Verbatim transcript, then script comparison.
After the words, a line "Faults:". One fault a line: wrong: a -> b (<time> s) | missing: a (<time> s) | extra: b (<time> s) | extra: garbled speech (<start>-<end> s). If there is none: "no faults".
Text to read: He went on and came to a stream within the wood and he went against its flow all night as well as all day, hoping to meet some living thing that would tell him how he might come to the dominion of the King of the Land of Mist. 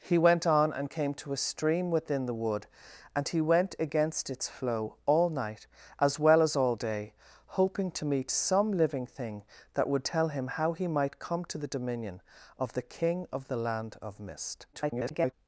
He went on and came to a stream within the wood and he went against its flow all night as well as all day, hoping to meet some living thing that would tell him how he might come to the dominion of the King of the Land of Mist. [garbled]
Faults:
extra: garbled speech (14.7-15.3 s)